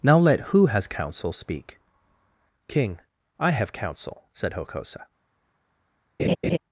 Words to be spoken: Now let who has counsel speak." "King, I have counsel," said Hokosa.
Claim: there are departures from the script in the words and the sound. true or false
true